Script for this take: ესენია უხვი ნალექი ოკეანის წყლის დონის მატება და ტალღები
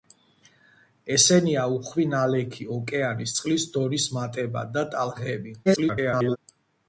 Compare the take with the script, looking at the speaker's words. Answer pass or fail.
fail